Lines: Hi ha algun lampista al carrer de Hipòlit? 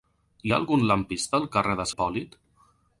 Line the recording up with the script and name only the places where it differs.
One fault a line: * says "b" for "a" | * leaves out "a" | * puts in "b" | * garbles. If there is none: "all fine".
all fine